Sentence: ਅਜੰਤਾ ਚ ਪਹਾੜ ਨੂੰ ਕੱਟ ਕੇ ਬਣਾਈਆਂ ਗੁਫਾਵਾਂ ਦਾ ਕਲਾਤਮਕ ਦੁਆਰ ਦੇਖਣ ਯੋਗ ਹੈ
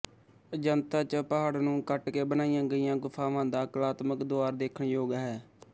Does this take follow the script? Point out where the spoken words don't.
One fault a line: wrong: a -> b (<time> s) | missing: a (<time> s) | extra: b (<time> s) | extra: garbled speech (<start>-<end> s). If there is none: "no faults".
extra: ਗਈਆਂ (2.7 s)